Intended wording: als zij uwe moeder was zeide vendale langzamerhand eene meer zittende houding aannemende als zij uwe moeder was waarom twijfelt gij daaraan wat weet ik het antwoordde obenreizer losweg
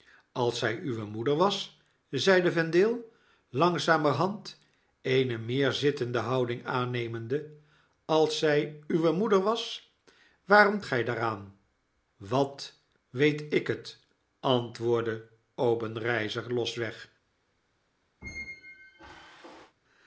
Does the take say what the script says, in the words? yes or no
no